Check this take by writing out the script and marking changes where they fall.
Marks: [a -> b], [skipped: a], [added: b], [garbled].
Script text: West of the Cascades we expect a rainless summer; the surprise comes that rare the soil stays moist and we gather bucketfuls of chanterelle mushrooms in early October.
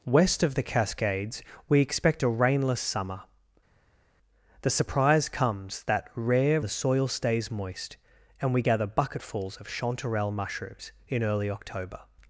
West of the Cascades we expect a rainless summer; the surprise comes that rare the soil stays moist and we gather bucketfuls of chanterelle mushrooms in early October.